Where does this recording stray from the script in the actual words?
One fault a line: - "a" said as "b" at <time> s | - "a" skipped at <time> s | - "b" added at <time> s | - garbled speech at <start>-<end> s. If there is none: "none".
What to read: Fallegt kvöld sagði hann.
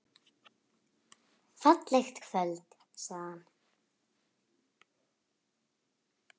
none